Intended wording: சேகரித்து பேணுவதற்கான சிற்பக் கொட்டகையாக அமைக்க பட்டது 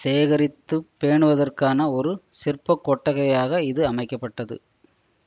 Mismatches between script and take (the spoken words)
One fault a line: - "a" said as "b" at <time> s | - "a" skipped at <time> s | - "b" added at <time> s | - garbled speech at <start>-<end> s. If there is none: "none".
- "ஒரு" added at 1.9 s
- "இது" added at 3.6 s